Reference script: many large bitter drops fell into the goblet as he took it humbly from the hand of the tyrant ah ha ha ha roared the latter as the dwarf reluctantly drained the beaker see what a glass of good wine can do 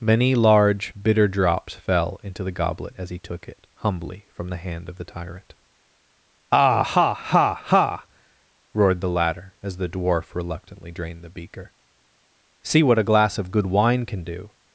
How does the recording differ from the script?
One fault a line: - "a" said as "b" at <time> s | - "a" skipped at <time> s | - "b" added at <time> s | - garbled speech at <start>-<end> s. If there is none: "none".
none